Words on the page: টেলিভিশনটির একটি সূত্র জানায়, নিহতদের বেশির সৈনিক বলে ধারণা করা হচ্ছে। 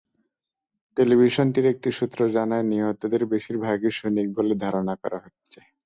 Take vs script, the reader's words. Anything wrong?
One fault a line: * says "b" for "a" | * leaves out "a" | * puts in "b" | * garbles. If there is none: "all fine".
* puts in "ভাগই"